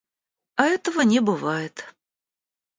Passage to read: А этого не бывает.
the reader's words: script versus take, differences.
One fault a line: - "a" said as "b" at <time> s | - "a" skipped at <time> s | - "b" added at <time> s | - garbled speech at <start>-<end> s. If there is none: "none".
none